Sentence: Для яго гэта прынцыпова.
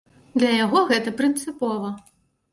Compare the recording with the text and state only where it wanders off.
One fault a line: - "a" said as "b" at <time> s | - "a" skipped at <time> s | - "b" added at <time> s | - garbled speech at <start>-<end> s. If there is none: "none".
none